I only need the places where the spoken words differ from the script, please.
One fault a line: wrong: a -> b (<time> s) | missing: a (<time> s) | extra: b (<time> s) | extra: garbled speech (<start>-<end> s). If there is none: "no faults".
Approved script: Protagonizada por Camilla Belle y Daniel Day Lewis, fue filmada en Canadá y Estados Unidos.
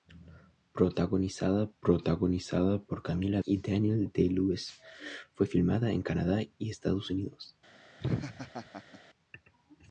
extra: protagonizada (1.8 s)
missing: Belle (3.4 s)